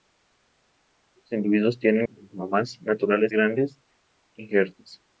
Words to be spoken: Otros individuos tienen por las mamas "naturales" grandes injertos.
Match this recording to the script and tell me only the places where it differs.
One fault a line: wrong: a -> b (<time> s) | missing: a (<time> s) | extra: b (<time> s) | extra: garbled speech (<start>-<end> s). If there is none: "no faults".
no faults